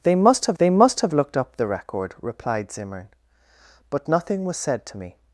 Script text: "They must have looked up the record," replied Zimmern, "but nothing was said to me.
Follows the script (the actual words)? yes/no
no